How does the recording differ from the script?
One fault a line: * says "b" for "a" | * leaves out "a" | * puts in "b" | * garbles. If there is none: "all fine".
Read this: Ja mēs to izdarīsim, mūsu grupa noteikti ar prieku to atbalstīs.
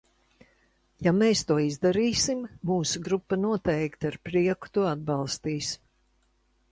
all fine